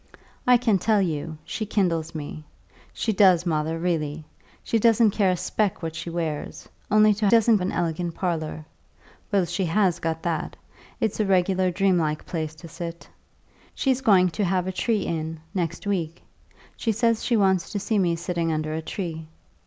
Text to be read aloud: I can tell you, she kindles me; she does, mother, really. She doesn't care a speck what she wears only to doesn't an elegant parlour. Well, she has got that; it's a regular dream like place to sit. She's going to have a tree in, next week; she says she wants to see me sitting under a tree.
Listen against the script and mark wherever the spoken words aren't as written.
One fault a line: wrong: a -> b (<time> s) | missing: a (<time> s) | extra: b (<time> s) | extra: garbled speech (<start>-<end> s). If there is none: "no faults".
no faults